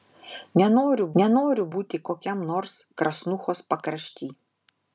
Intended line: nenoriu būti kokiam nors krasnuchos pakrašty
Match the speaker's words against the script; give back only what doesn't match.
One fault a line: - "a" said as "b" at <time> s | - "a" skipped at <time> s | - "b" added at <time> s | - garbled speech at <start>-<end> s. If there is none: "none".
- "nenoriu" added at 1.2 s